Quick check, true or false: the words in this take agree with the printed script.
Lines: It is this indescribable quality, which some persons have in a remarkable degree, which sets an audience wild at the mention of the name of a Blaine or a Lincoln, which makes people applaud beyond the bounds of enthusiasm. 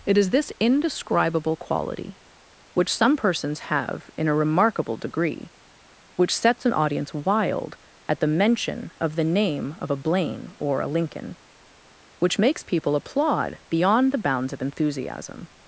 true